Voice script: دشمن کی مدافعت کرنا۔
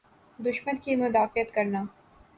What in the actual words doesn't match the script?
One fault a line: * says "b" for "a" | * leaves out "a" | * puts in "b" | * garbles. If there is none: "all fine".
all fine